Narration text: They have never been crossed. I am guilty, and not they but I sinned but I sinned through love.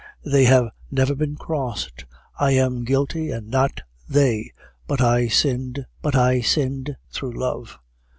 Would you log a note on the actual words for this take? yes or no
no